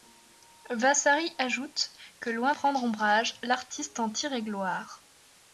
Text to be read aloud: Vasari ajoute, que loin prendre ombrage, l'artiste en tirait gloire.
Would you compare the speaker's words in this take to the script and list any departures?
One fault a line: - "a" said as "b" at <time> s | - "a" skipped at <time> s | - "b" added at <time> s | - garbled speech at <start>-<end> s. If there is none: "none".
none